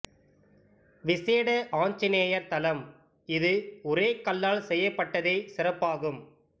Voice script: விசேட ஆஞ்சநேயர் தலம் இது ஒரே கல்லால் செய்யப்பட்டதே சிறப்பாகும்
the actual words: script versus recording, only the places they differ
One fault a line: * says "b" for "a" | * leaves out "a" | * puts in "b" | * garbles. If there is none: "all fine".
all fine